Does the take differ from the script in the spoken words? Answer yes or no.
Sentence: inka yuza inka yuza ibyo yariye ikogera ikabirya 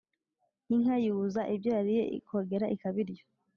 yes